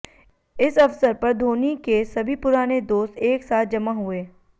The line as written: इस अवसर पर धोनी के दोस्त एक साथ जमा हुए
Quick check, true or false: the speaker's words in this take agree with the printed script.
false